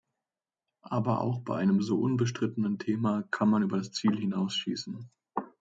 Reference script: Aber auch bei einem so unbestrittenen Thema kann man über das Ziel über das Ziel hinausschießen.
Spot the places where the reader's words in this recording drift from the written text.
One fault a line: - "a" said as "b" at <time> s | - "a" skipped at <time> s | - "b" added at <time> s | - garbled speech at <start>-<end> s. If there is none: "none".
- "über das Ziel" skipped at 4.2 s